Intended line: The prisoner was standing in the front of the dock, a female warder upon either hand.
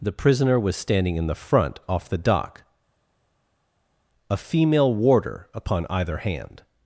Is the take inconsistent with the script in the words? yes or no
yes